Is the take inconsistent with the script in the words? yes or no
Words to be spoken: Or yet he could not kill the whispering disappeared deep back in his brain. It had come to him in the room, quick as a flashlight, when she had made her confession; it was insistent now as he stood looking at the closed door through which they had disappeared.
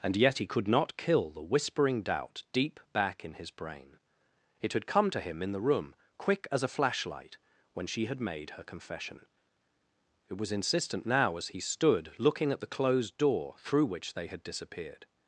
yes